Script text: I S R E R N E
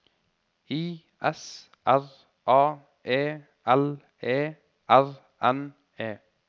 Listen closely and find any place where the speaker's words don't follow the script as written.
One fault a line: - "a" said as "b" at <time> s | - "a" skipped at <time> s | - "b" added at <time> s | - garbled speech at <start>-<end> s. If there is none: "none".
- "A E L" added at 2.5 s